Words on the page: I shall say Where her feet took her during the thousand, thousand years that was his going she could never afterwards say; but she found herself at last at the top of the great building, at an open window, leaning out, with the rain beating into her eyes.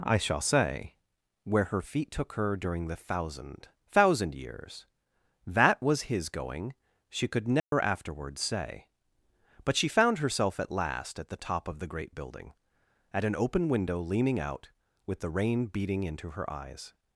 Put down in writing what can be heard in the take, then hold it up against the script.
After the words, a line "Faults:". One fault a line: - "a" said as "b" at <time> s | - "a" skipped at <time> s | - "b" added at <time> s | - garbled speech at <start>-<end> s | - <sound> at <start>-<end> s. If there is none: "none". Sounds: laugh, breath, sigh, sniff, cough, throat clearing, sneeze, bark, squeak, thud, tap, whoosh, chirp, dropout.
I shall say Where her feet took her during the thousand, thousand years that was his going she could never afterwards say; but she found herself at last at the top of the great building, at an open window, leaning out, with the rain beating into her eyes.
Faults:
- dropout at 7.6-7.7 s